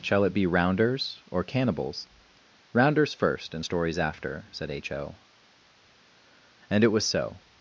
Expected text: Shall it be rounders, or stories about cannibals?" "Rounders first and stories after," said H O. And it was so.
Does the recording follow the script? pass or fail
fail